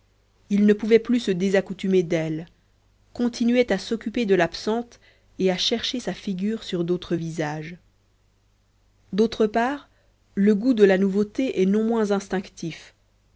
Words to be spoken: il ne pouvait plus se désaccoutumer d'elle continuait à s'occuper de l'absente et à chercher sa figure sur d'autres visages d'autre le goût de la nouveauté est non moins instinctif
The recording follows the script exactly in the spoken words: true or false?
false